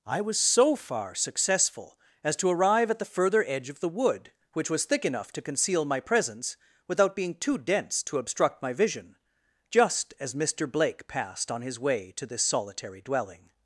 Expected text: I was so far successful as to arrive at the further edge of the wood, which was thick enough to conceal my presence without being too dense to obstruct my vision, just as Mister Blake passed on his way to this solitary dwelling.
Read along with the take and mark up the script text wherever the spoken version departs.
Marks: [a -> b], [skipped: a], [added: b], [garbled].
I was so far successful as to arrive at the further edge of the wood, which was thick enough to conceal my presence without being too dense to obstruct my vision, just as Mister Blake passed on his way to this solitary dwelling.